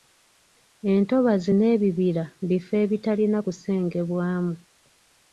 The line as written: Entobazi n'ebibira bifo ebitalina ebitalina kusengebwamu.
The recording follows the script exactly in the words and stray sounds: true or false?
false